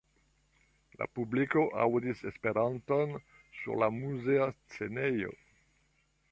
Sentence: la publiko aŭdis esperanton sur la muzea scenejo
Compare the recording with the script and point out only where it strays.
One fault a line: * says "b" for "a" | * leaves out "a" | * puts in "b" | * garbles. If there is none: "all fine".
all fine